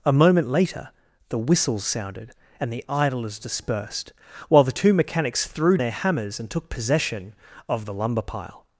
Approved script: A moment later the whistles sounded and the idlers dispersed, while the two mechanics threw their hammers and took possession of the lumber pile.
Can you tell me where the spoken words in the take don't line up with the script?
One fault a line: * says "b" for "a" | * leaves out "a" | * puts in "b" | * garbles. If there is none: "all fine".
all fine